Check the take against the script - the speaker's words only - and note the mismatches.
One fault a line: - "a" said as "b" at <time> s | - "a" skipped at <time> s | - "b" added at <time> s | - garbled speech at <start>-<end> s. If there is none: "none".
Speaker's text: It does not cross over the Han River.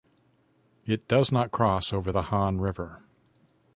none